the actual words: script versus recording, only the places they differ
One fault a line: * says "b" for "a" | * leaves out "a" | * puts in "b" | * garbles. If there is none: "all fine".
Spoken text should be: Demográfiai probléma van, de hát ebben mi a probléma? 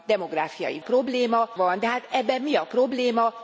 all fine